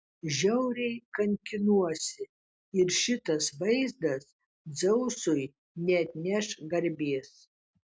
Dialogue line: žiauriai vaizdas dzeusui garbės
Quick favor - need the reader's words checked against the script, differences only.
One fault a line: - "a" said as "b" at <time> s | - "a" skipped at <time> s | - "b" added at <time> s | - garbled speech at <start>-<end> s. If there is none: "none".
- "kankinuosi ir šitas" added at 1.2 s
- "neatneš" added at 5.9 s